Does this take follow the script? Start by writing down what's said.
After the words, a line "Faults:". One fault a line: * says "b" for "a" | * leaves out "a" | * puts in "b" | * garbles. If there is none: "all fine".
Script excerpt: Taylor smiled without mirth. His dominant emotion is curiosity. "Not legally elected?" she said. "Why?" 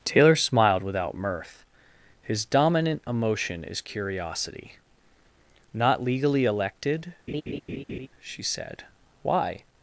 Taylor smiled without mirth. His dominant emotion is curiosity. "Not legally elected?" she said. "Why?"
Faults:
all fine